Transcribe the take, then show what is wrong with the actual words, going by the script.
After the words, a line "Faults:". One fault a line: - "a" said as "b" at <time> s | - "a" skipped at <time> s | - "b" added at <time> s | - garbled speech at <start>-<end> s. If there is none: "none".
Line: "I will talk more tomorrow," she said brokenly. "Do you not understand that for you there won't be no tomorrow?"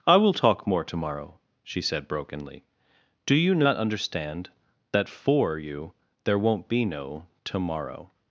"I will talk more tomorrow," she said brokenly. "Do you not understand that for you there won't be no tomorrow?"
Faults:
none